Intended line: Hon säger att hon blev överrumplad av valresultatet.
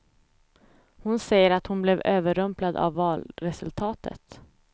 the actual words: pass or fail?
pass